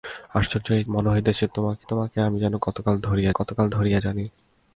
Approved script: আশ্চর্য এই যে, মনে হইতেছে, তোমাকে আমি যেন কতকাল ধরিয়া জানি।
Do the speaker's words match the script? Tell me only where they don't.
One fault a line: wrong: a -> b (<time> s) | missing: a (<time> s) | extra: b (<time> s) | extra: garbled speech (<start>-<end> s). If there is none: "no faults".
missing: যে (0.8 s)
extra: তোমাকে (1.8 s)
extra: কতকাল ধরিয়া (3.3 s)